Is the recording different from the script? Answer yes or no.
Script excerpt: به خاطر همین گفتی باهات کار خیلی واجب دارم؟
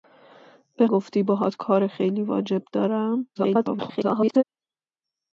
yes